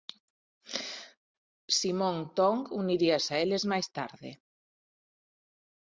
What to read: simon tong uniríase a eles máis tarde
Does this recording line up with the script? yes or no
yes